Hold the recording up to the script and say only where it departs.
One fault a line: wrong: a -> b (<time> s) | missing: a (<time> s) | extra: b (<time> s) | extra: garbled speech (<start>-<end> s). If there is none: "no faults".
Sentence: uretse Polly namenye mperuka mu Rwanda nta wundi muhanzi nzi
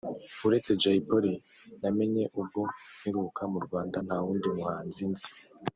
extra: Jay (0.8 s)
extra: ubwo (2.4 s)